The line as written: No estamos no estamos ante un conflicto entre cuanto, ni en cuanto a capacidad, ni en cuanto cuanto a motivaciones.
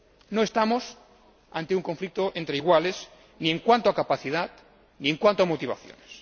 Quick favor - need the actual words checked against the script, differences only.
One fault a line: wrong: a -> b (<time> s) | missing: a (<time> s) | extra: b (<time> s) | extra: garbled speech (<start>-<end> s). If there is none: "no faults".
missing: no estamos (1.0 s)
wrong: cuanto -> iguales (2.6 s)
missing: cuanto (5.4 s)